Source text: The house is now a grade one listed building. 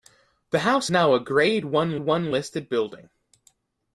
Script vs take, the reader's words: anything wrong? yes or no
yes